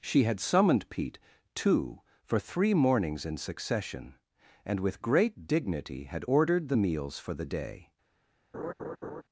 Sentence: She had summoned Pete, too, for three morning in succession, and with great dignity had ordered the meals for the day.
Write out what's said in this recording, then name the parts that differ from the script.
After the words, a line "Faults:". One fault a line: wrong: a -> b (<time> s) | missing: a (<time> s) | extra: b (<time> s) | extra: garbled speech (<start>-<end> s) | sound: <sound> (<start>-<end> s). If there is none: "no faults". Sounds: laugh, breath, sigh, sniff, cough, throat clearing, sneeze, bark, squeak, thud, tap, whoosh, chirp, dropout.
She had summoned Pete, too, for three mornings in succession, and with great dignity had ordered the meals for the day.
Faults:
wrong: morning -> mornings (2.7 s)
sound: laugh (8.5-9.2 s)